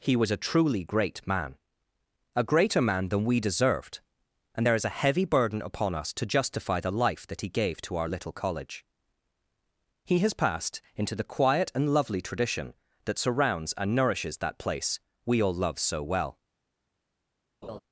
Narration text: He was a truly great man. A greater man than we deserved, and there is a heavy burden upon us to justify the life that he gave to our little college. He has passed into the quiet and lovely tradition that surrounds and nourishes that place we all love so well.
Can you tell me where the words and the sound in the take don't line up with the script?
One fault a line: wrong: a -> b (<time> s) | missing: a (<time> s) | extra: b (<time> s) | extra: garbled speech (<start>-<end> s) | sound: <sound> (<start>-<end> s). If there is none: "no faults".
sound: laugh (17.6-17.8 s)